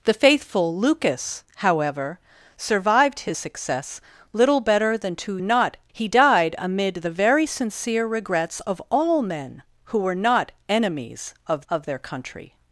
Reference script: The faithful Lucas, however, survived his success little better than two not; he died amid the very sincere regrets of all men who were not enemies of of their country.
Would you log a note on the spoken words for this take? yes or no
no